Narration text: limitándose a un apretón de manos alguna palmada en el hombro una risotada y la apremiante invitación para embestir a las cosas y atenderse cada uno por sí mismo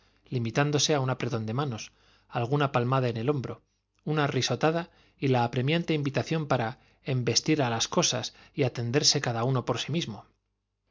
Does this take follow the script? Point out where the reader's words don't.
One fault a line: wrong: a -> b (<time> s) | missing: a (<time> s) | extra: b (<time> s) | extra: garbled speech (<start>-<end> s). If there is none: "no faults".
no faults